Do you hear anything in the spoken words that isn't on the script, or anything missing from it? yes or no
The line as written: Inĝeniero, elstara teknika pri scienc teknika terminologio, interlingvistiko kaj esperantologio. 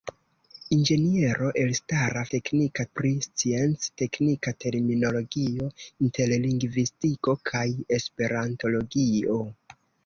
no